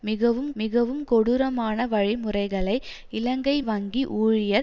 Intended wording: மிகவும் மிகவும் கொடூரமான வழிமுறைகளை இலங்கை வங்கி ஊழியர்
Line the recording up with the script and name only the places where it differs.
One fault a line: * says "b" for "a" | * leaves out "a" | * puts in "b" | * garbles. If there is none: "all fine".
all fine